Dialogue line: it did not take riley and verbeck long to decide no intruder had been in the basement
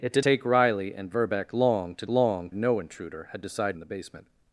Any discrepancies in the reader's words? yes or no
yes